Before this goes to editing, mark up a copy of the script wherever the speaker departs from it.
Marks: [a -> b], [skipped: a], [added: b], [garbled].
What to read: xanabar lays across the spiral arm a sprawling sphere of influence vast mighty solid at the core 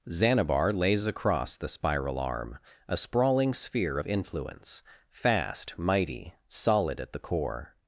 xanabar lays across the spiral arm a sprawling sphere of influence [vast -> fast] mighty solid at the core